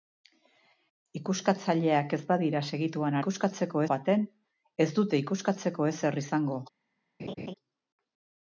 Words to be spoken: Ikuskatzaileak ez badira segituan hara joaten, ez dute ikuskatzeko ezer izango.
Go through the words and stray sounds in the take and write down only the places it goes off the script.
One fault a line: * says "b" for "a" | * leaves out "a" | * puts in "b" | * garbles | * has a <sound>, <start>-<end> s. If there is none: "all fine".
* says "ikuskatzeko" for "hara"
* has a laugh, 7.2-7.5 s